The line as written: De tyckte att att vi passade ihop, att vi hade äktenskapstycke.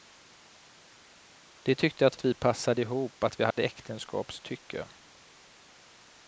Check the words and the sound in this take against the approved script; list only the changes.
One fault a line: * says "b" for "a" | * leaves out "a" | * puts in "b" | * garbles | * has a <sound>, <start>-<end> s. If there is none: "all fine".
* has a dropout, 3.5-3.6 s